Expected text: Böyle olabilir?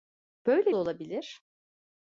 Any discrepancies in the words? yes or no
no